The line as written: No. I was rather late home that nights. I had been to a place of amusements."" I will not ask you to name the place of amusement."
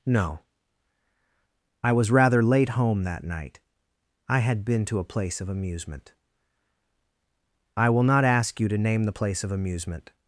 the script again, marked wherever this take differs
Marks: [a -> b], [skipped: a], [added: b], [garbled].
No. I was rather late home that [nights. -> night] I had been to a place of [amusements."" -> amusement] I will not ask you to name the place of amusement."